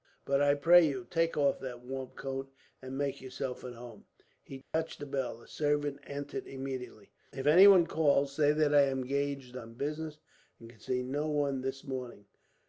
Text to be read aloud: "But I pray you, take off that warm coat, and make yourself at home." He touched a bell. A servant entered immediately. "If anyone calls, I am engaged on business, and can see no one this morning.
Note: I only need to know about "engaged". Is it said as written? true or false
true